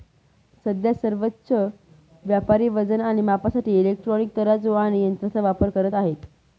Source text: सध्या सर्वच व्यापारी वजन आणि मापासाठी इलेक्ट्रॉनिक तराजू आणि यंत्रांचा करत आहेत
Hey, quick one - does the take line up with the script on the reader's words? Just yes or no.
no